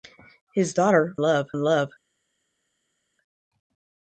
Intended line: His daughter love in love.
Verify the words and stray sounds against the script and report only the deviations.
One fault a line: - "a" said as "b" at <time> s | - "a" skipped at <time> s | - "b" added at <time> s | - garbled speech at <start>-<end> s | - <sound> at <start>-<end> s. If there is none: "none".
none